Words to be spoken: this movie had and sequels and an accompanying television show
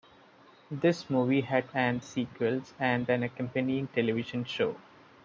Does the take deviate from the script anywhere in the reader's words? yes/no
no